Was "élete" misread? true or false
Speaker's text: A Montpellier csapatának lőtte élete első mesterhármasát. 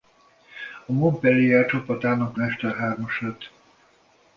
true